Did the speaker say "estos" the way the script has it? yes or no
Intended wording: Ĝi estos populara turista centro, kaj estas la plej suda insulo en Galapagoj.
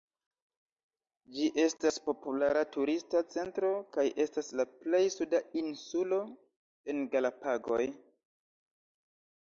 no